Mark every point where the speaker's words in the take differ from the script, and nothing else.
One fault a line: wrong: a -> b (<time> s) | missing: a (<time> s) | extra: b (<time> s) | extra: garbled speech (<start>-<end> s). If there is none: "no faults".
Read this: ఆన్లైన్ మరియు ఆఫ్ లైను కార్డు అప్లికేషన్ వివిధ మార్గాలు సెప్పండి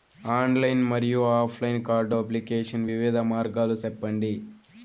no faults